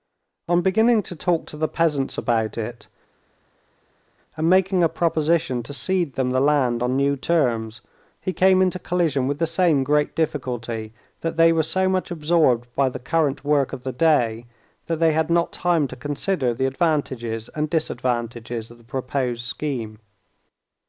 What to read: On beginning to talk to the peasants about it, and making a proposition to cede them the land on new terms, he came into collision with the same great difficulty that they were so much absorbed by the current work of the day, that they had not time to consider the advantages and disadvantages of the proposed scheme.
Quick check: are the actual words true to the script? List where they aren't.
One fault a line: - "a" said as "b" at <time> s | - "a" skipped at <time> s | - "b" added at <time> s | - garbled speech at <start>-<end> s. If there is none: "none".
none